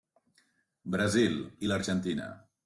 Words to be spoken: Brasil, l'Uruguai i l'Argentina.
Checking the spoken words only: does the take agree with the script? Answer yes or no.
no